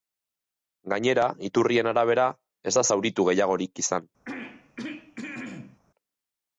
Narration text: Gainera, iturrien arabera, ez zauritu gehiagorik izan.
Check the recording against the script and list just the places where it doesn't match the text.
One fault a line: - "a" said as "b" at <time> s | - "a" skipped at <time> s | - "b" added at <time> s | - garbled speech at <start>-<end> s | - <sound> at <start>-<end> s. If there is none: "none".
- "da" added at 2.8 s
- throat clearing at 4.3-5.8 s